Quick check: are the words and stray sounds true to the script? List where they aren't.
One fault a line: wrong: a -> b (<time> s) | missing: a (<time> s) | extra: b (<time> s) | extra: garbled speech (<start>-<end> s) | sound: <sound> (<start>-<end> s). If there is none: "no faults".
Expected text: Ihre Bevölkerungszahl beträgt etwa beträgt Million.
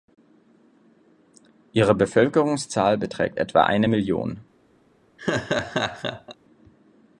wrong: beträgt -> eine (3.6 s)
sound: laugh (5.2-6.4 s)